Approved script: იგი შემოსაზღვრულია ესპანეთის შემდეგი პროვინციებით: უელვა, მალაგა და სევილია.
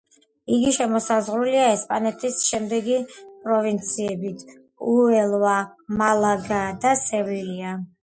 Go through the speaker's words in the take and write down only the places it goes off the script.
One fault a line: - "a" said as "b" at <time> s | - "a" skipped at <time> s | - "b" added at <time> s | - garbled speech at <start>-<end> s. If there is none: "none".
none